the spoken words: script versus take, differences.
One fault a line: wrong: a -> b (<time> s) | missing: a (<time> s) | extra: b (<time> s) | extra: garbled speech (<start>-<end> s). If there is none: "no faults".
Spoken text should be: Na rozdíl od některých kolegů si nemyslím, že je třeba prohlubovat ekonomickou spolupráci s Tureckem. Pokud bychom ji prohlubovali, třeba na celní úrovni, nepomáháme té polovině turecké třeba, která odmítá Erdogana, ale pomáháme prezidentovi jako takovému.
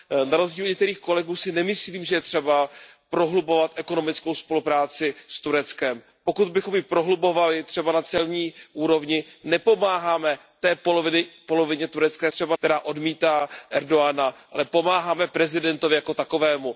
no faults